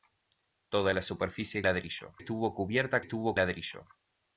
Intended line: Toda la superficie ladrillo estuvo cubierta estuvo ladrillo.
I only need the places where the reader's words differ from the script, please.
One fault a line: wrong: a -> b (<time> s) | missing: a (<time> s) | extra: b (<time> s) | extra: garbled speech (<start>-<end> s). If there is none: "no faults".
no faults